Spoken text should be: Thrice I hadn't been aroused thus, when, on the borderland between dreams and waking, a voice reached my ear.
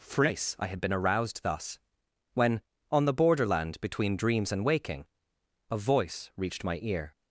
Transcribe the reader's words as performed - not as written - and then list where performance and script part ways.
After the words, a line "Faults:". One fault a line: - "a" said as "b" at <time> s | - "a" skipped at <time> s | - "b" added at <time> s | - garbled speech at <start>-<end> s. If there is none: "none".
Thrice I had been aroused thus, when, on the borderland between dreams and waking, a voice reached my ear.
Faults:
- "hadn't" said as "had" at 0.7 s